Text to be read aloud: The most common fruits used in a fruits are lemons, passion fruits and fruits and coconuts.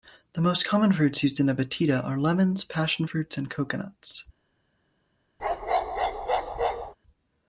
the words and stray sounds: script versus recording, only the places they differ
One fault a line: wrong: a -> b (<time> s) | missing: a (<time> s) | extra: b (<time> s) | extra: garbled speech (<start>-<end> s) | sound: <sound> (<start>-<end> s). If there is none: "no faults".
wrong: fruits -> batida (1.5 s)
missing: fruits and (3.5 s)
sound: bark (5.4-6.9 s)